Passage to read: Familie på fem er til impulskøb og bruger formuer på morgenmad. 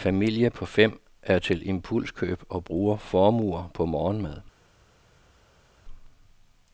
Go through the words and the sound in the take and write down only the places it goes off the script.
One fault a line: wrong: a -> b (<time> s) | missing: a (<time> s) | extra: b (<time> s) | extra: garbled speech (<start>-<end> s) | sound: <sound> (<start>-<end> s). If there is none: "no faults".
no faults